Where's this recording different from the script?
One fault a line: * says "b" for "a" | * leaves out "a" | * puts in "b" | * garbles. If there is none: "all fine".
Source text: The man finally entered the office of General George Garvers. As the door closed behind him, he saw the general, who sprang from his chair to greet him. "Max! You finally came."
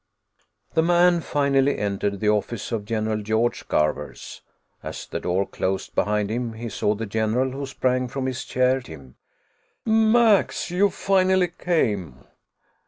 * leaves out "to greet"